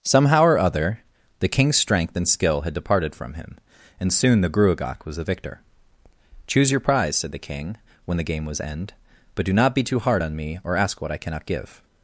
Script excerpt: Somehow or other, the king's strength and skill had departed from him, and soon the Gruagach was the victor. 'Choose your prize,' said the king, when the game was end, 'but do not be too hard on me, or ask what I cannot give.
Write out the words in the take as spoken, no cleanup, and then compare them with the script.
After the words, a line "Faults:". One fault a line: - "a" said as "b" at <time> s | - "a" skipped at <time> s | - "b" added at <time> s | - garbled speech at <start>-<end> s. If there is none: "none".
Somehow or other, the king's strength and skill had departed from him, and soon the Gruagach was the victor. 'Choose your prize,' said the king, when the game was end, 'but do not be too hard on me, or ask what I cannot give.
Faults:
none